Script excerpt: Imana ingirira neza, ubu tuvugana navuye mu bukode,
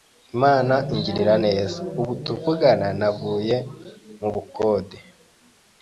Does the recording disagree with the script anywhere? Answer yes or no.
no